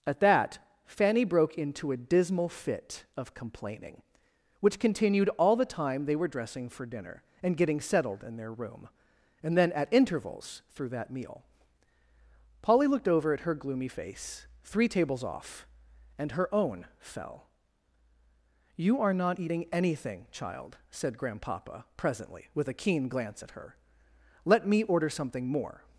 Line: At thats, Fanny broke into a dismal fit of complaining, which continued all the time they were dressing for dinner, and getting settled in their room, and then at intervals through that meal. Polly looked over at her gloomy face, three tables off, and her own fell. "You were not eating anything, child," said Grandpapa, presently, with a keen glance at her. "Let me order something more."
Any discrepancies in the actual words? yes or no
yes